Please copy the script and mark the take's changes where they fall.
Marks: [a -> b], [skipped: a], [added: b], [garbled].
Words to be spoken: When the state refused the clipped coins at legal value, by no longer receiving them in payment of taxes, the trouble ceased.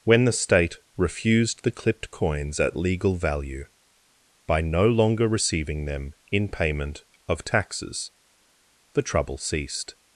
When the state refused the clipped coins at legal value, by no longer receiving them in payment of taxes, the trouble ceased.